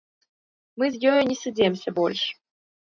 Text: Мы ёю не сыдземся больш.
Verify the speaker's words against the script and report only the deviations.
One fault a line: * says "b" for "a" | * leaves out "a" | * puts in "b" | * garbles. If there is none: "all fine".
* puts in "з"